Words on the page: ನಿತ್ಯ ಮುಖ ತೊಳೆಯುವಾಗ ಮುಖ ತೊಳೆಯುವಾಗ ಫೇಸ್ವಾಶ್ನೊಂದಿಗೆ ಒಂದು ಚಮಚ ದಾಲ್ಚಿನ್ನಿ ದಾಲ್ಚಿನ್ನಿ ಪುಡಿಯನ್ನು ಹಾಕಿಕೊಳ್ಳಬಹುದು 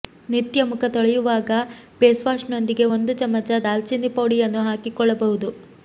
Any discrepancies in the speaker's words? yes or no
yes